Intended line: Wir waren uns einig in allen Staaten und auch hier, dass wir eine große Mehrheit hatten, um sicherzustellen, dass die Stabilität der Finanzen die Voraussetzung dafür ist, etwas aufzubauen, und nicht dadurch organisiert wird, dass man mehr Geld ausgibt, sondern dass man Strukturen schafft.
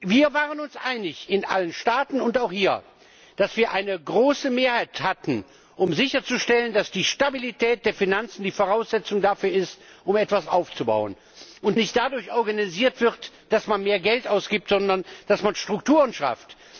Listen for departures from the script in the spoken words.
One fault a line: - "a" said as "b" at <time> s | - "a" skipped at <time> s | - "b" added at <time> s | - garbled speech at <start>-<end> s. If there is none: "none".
none